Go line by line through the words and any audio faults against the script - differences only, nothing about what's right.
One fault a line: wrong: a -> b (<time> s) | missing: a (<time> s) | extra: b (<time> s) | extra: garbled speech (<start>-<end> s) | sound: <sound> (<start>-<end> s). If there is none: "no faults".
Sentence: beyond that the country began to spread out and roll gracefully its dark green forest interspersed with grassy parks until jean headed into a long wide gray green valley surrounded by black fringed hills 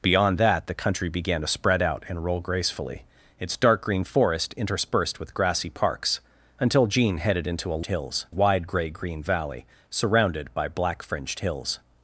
wrong: long -> hills (7.8 s)